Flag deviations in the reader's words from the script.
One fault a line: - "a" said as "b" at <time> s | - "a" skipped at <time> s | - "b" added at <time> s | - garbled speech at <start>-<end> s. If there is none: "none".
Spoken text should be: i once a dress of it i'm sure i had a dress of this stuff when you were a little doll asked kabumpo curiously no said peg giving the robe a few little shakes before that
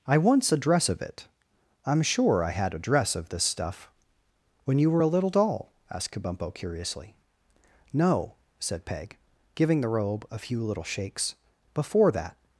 none